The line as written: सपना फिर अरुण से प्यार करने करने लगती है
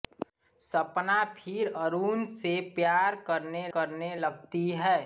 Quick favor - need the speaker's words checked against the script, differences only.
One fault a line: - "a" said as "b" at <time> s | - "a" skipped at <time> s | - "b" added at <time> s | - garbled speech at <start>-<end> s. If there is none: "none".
none